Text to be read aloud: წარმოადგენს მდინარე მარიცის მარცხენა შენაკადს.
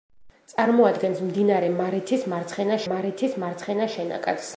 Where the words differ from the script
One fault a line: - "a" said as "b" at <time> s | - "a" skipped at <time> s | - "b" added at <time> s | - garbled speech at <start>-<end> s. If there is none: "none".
- "მარიცის მარცხენა" added at 2.9 s